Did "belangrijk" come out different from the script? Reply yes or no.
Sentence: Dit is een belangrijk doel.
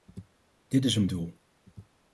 yes